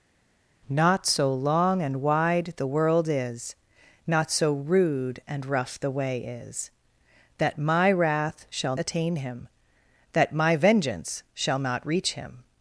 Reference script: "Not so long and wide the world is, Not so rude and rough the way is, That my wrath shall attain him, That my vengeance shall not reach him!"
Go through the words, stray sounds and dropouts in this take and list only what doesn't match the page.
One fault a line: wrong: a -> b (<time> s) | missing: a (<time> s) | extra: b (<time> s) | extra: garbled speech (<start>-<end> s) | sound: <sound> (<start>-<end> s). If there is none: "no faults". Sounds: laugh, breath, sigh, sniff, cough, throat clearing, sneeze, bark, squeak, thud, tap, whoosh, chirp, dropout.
no faults